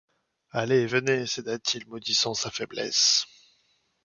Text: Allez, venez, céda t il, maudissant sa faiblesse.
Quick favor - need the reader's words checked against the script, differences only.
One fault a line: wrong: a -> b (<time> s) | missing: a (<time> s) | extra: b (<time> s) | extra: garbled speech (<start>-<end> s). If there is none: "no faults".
no faults